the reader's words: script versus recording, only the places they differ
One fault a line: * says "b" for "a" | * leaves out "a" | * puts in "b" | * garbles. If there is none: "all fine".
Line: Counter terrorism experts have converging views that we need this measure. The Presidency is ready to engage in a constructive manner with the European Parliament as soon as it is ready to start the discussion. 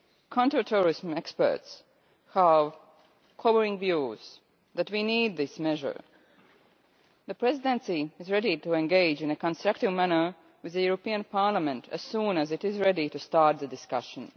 all fine